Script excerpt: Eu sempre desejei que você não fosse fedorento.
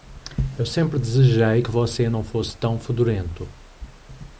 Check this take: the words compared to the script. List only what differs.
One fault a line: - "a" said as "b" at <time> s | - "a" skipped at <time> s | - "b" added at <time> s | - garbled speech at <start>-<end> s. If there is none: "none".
- "tão" added at 2.6 s